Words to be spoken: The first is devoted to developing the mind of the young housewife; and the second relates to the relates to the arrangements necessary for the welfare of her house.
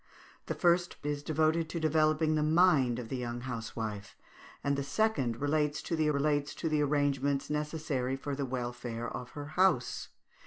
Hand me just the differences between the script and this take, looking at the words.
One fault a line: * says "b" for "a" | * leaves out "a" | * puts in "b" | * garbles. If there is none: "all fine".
all fine